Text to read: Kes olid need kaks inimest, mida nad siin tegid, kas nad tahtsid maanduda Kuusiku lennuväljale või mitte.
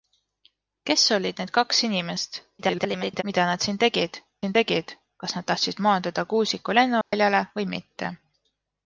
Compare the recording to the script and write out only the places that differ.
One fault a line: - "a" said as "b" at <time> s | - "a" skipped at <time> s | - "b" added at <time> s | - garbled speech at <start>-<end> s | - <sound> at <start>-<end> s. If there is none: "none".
- garbled speech at 2.6-3.2 s
- "siin tegid" added at 4.4 s
- dropout at 7.0-7.1 s